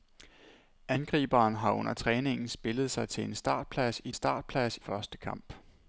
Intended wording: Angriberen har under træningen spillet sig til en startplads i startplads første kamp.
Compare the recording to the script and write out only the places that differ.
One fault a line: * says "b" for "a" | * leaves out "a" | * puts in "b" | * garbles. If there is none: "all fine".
all fine